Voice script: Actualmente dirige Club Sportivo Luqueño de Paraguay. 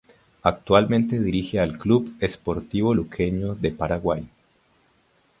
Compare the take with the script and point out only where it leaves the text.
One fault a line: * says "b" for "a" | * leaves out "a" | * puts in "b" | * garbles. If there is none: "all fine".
* puts in "al"